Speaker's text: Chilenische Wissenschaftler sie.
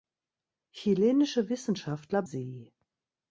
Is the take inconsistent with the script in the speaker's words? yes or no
no